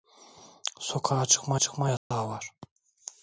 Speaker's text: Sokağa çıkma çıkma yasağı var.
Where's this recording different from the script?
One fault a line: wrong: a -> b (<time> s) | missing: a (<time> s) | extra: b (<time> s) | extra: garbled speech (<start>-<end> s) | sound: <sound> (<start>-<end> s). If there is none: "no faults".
sound: dropout (2.0-2.1 s)